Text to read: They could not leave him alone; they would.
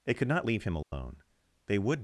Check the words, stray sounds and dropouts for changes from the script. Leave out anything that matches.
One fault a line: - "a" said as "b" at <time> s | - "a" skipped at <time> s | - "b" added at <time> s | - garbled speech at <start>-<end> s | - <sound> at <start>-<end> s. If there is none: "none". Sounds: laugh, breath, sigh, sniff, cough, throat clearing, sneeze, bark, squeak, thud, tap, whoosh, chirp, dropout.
- dropout at 0.8-0.9 s